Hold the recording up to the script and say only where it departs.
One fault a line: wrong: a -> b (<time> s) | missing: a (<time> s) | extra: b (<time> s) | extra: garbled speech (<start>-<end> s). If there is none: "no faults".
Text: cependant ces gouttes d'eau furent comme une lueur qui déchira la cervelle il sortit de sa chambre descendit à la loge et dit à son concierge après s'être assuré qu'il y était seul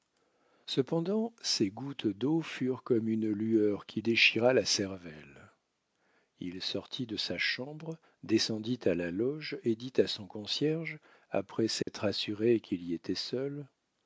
no faults